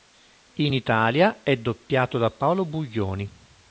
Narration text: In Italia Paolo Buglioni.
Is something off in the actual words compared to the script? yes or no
yes